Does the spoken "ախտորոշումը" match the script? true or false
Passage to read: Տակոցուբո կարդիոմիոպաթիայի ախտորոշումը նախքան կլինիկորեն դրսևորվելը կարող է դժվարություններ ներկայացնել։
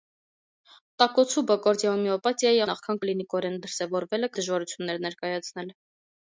false